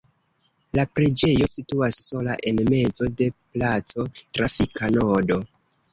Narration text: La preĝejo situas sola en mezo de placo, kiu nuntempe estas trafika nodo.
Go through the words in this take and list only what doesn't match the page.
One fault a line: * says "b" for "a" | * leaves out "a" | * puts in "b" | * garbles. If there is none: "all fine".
* leaves out "kiu nuntempe estas"